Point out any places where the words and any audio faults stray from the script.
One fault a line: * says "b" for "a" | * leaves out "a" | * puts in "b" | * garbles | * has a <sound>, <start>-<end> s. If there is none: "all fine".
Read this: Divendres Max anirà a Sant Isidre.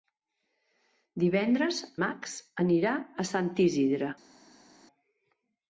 all fine